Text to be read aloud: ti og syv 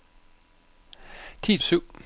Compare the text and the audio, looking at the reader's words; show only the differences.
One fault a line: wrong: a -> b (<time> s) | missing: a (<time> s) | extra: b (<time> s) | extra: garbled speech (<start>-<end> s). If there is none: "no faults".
no faults